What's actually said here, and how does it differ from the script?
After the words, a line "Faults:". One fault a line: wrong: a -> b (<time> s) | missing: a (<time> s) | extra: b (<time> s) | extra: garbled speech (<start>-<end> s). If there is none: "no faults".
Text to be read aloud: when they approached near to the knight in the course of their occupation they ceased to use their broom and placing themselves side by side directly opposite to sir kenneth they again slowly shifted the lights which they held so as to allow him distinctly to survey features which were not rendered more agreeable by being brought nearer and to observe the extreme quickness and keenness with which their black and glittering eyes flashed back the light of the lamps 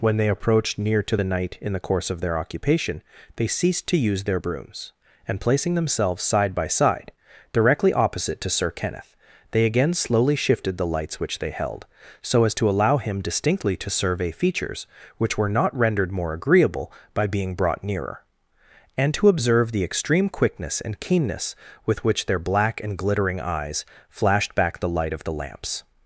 when they approached near to the knight in the course of their occupation they ceased to use their brooms and placing themselves side by side directly opposite to sir kenneth they again slowly shifted the lights which they held so as to allow him distinctly to survey features which were not rendered more agreeable by being brought nearer and to observe the extreme quickness and keenness with which their black and glittering eyes flashed back the light of the lamps
Faults:
wrong: broom -> brooms (4.4 s)